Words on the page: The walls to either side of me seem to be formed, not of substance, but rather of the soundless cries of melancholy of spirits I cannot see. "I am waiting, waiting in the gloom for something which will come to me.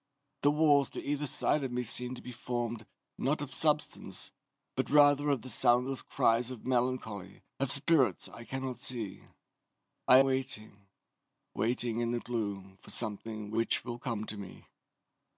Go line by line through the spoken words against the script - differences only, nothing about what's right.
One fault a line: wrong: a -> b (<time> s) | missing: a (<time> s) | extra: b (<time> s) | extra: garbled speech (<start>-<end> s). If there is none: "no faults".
missing: am (10.2 s)